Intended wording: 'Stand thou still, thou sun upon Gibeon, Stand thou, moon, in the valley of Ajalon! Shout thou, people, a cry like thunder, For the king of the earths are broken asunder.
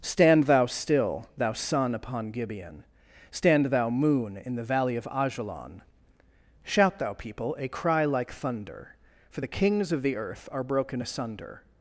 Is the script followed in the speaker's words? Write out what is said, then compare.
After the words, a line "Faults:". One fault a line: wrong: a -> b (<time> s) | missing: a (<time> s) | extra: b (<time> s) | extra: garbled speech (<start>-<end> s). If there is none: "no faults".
'Stand thou still, thou sun upon Gibeon, Stand thou, moon, in the valley of Ajalon! Shout thou, people, a cry like thunder, For the kings of the earth are broken asunder.
Faults:
wrong: king -> kings (9.5 s)
wrong: earths -> earth (10.1 s)